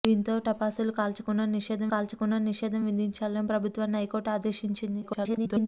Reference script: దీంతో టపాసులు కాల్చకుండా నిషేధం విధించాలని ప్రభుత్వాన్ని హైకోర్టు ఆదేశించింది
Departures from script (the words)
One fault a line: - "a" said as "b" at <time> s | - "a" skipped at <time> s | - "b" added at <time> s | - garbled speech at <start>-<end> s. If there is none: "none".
- "కాల్చకుండా నిషేధం" added at 1.9 s
- garbled speech at 5.0-5.7 s